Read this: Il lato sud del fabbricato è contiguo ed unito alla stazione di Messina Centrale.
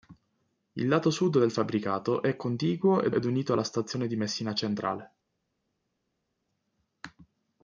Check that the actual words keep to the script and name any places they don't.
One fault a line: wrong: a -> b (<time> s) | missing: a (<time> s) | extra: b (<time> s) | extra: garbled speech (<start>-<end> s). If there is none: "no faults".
extra: ed (3.1 s)